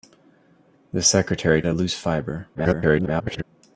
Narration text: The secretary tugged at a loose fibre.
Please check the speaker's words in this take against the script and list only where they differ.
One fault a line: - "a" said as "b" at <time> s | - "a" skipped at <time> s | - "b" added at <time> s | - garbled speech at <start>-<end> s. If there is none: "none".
- "tugged at" skipped at 1.6 s
- garbled speech at 2.5-3.4 s